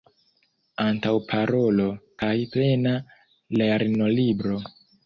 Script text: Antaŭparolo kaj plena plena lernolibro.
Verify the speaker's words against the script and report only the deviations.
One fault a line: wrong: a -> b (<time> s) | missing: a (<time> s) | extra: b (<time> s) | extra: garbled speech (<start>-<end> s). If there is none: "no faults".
missing: plena (3.0 s)